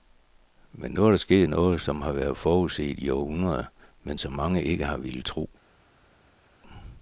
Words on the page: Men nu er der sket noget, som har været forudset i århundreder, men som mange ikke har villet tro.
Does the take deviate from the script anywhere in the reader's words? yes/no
no